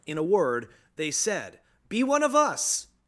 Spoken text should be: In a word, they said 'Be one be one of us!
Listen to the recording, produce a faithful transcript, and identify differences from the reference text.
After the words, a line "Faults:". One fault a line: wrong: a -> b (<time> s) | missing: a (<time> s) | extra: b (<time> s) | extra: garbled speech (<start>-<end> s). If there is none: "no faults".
In a word, they said 'Be one of us!
Faults:
missing: be one (2.2 s)